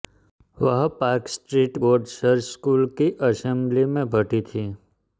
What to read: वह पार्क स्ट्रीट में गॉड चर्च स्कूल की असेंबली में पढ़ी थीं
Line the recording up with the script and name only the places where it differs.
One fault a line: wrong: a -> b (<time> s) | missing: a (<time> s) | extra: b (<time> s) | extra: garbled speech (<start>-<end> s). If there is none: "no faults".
missing: में (1.8 s)